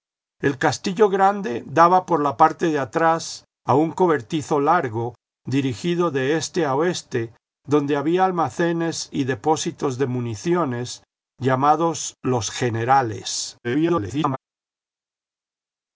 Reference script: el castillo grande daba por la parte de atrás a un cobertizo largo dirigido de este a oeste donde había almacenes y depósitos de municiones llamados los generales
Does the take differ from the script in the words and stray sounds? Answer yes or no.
yes